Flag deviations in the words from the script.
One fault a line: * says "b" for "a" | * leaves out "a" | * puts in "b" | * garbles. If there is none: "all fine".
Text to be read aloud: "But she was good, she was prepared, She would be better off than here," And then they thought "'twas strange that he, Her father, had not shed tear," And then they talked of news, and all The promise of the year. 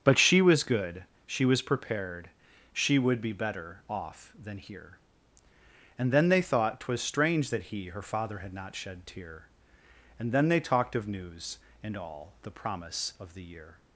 all fine